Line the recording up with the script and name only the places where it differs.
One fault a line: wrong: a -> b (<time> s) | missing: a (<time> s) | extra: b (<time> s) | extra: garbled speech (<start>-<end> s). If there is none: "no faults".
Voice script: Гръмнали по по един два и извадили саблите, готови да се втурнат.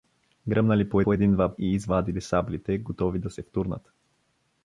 no faults